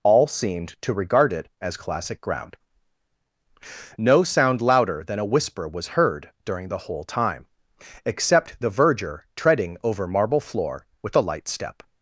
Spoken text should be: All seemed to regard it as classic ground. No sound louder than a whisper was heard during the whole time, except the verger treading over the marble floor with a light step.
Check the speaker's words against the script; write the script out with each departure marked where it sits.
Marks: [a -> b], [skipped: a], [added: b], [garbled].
All seemed to regard it as classic ground. No sound louder than a whisper was heard during the whole time, except the verger treading over [skipped: the] marble floor with a light step.